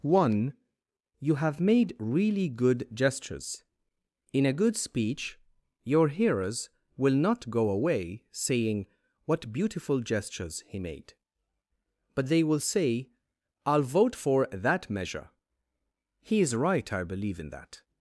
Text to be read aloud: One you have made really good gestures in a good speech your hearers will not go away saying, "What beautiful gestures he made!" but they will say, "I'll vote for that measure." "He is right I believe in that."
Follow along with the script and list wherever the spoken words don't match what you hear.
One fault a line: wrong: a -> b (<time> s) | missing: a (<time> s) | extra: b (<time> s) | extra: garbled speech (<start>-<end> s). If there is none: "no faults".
no faults